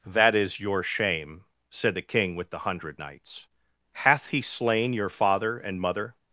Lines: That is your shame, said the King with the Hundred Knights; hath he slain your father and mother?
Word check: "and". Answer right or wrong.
right